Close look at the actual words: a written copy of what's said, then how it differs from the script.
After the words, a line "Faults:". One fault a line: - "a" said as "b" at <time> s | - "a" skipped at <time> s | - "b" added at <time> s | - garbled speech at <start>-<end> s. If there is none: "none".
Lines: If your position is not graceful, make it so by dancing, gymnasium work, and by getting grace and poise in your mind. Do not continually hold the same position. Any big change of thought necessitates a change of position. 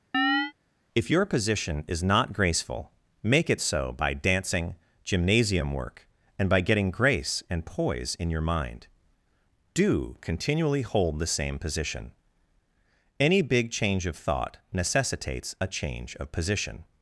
If your position is not graceful, make it so by dancing, gymnasium work, and by getting grace and poise in your mind. Do continually hold the same position. Any big change of thought necessitates a change of position.
Faults:
- "not" skipped at 10.2 s